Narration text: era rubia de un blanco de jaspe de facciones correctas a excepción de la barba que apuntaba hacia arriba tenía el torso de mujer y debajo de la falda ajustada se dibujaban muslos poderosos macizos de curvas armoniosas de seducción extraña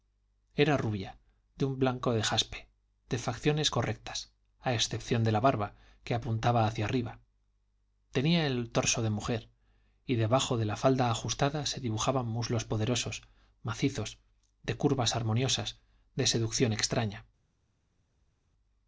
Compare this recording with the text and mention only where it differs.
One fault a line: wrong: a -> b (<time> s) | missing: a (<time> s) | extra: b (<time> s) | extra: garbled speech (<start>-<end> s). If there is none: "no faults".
no faults